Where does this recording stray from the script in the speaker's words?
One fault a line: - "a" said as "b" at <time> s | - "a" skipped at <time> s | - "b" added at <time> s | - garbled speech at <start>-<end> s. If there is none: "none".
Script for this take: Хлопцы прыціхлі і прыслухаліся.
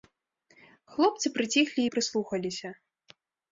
none